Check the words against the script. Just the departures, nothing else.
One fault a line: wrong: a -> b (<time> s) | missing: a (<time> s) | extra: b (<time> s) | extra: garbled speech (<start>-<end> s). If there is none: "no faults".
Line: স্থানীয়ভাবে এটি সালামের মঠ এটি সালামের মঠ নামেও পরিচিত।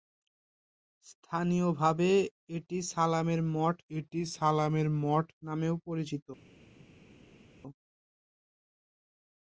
no faults